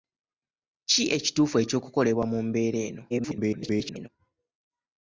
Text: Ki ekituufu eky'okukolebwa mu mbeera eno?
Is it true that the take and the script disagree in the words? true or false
true